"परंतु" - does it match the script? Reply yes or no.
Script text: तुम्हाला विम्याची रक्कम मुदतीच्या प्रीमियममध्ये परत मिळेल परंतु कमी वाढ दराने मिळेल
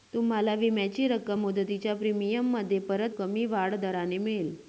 no